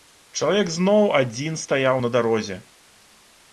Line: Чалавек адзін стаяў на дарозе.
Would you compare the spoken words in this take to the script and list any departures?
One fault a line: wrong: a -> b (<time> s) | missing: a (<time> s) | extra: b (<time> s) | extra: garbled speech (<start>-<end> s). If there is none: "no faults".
extra: зноў (0.8 s)